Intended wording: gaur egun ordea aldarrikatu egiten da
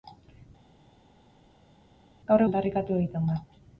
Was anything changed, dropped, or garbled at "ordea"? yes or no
yes